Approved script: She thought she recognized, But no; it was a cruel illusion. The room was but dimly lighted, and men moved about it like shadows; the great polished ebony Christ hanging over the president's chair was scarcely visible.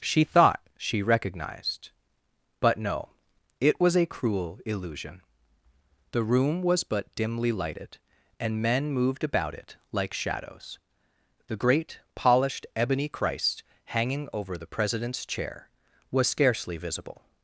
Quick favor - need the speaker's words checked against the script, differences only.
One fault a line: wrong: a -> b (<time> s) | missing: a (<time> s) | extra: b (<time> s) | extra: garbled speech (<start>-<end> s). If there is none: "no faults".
no faults